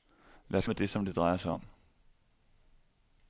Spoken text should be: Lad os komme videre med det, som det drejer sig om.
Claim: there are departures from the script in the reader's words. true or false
true